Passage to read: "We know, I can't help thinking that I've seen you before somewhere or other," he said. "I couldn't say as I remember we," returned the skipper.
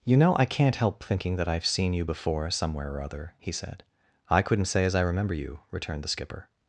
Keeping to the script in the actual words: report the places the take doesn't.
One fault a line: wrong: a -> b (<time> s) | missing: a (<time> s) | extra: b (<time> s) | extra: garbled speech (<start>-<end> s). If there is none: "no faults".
wrong: We -> You (0.0 s)
wrong: we -> you (5.3 s)